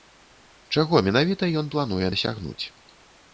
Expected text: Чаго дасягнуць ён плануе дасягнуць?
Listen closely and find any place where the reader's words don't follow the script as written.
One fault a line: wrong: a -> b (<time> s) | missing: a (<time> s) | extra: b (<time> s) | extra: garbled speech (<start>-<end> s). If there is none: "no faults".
wrong: дасягнуць -> менавіта (1.1 s)